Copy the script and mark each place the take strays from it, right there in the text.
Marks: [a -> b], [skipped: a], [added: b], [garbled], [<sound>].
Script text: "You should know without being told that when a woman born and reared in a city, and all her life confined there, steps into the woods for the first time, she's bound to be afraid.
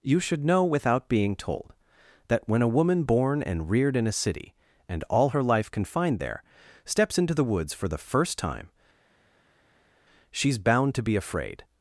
"You should know without being told that when a woman born and reared in a city, and all her life confined there, steps into the woods for the first time, she's bound to be afraid.